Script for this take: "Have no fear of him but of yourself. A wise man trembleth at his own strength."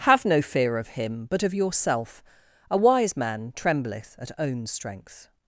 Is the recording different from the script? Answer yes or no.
yes